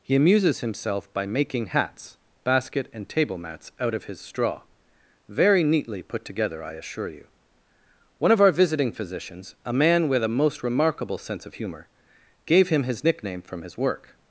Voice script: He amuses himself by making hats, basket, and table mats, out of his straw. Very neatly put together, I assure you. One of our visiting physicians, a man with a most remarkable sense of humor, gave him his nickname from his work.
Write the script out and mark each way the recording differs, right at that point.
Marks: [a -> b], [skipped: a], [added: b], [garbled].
He amuses himself by making hats, basket, and table mats, out of his straw. Very neatly put together, I assure you. One of our visiting physicians, a man with a most remarkable sense of humor, gave him his nickname from his work.